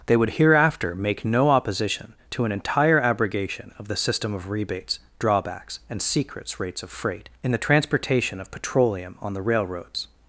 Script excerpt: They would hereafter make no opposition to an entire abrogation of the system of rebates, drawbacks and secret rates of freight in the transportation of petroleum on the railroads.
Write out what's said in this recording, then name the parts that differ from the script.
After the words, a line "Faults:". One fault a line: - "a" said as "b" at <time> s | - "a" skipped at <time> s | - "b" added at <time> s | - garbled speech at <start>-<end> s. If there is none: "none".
They would hereafter make no opposition to an entire abrogation of the system of rebates, drawbacks and secrets rates of freight in the transportation of petroleum on the railroads.
Faults:
- "secret" said as "secrets" at 6.0 s